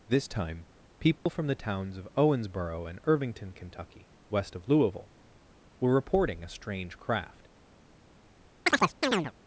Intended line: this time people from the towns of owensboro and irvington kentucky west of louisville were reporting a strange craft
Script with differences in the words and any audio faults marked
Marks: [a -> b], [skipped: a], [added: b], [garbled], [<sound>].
this time people [dropout] from the towns of owensboro and irvington kentucky west of louisville were reporting a strange craft [chirp]